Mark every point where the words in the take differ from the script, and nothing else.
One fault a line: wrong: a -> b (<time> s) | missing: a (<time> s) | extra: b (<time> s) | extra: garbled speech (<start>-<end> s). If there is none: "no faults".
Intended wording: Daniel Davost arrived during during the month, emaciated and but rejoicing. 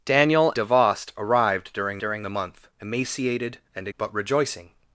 no faults